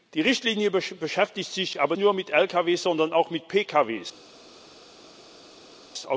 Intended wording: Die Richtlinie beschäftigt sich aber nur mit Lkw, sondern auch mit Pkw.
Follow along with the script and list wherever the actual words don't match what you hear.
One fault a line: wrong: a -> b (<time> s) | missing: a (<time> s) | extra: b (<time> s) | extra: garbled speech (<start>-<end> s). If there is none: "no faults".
no faults